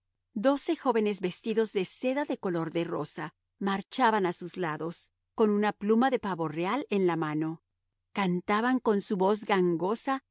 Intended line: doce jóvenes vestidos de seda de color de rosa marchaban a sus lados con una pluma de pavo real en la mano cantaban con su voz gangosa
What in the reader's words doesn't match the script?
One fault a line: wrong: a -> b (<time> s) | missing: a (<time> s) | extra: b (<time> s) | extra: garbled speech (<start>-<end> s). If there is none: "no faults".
no faults